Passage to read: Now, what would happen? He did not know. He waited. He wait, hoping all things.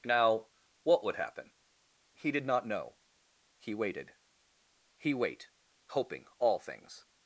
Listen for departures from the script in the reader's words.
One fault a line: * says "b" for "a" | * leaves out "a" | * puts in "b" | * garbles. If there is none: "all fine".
all fine